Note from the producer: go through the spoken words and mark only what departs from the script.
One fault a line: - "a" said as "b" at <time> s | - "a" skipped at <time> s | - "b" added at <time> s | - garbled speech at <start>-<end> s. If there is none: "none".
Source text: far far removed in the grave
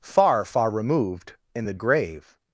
none